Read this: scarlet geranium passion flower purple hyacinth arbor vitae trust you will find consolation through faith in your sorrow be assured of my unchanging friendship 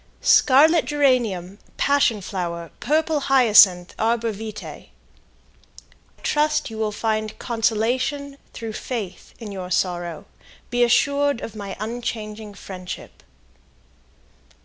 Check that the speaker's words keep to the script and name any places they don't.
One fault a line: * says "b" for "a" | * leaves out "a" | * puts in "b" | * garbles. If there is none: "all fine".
all fine